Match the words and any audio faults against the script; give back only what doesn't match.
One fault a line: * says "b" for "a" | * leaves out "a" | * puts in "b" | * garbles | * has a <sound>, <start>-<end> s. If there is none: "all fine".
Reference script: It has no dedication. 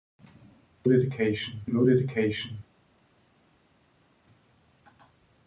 * says "dedication" for "has"